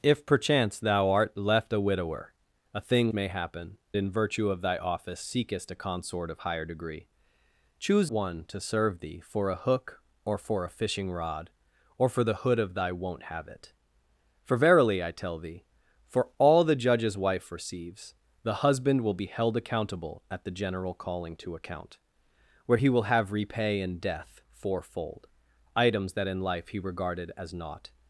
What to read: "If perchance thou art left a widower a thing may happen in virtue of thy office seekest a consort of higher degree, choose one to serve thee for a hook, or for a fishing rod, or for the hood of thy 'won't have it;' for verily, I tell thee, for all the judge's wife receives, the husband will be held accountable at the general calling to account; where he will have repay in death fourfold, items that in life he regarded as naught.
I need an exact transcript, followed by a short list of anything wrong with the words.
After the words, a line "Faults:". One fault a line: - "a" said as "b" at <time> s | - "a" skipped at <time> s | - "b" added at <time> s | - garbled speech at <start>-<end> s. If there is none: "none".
"If perchance thou art left a widower a thing may happen in virtue of thy office seekest a consort of higher degree, choose one to serve thee for a hook, or for a fishing rod, or for the hood of thy 'won't have it;' for verily, I tell thee, for all the judge's wife receives, the husband will be held accountable at the general calling to account; where he will have repay in death fourfold, items that in life he regarded as naught.
Faults:
none